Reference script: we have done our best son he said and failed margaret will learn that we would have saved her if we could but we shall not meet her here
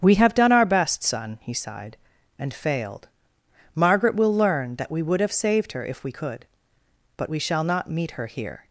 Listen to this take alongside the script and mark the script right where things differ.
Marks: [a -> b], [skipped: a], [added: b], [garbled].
we have done our best son he [said -> sighed] and failed margaret will learn that we would have saved her if we could but we shall not meet her here